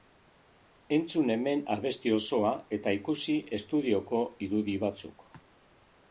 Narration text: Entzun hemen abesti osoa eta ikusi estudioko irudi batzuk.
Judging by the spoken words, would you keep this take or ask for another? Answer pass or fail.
pass